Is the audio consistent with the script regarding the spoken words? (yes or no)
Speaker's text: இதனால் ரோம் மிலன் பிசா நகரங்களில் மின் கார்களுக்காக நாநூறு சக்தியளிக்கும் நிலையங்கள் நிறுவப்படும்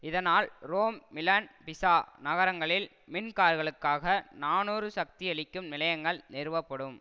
yes